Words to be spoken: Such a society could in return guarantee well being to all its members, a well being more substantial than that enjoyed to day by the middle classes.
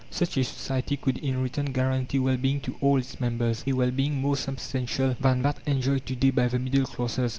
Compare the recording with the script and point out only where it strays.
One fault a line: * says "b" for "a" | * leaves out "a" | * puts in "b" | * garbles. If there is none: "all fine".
all fine